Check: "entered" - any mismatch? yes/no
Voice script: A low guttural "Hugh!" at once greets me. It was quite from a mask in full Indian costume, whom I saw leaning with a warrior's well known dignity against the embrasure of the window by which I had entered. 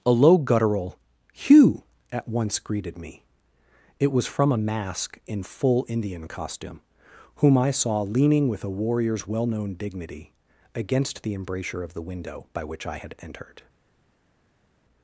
no